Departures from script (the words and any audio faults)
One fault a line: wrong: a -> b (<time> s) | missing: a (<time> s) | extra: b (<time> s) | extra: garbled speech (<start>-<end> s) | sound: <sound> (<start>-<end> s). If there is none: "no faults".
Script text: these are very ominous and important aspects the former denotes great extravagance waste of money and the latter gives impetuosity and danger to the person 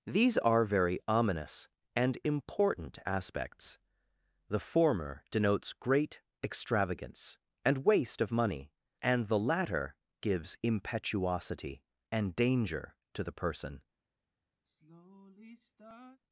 extra: and (7.6 s)
sound: sigh (14.6-16.2 s)